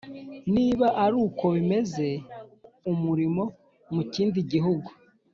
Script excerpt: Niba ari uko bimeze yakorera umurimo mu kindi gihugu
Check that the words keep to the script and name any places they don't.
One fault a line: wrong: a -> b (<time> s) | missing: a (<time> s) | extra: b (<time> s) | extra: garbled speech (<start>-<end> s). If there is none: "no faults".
missing: yakorera (2.1 s)